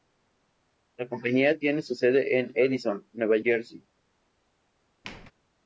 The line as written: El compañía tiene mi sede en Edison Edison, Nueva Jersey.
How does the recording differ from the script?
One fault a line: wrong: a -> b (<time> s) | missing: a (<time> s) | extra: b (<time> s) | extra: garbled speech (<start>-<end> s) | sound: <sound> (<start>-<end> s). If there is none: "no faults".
wrong: El -> La (1.0 s)
wrong: mi -> su (1.8 s)
missing: Edison (3.1 s)
sound: squeak (5.0-5.3 s)